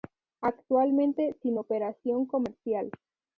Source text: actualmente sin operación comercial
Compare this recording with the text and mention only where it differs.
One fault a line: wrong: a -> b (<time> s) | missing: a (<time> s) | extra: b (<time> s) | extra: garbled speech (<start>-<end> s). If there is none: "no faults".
no faults